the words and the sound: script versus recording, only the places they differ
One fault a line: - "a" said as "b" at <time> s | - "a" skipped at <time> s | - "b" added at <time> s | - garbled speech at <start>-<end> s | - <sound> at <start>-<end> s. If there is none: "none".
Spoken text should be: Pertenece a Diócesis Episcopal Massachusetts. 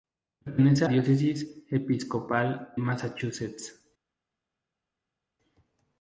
none